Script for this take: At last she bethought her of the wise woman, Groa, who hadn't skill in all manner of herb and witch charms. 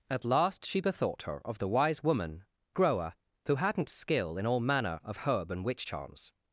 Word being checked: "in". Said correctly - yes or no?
yes